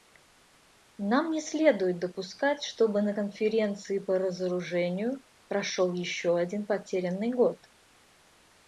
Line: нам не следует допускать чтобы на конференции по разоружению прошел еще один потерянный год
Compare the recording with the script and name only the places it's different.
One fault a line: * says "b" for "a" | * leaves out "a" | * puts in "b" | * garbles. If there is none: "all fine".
all fine